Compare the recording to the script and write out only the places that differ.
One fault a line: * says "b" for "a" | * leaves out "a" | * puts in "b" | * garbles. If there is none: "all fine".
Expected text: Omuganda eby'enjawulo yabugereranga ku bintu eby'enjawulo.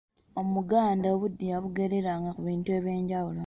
* says "obudde" for "eby'enjawulo"